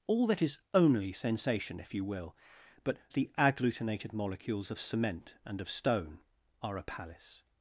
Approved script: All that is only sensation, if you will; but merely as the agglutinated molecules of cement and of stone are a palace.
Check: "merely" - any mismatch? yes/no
yes